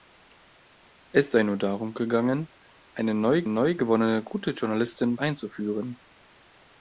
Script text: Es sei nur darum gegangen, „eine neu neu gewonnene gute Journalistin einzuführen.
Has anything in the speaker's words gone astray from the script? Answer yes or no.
no